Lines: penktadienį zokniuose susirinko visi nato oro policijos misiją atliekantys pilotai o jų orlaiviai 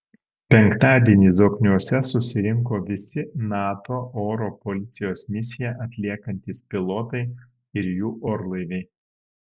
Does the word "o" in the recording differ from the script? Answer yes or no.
yes